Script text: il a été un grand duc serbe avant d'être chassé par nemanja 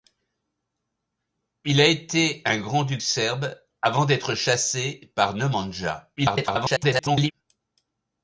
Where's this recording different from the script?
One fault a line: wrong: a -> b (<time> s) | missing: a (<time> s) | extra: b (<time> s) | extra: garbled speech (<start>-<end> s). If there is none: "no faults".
extra: garbled speech (6.2-7.3 s)